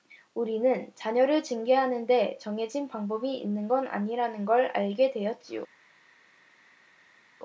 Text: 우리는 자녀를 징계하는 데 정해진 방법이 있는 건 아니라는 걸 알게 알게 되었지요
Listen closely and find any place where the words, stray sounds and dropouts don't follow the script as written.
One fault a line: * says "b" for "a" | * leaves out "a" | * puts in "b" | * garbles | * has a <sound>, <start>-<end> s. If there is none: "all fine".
* leaves out "알게"